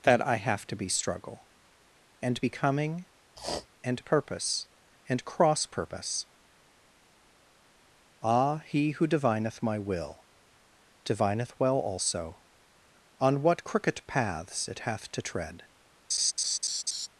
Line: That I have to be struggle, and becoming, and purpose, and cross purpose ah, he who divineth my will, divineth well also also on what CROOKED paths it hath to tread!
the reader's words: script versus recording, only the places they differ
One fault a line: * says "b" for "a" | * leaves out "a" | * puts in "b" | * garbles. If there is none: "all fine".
* leaves out "also"